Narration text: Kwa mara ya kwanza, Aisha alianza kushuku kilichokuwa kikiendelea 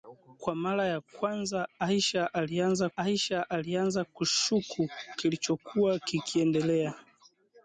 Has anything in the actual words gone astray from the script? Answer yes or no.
yes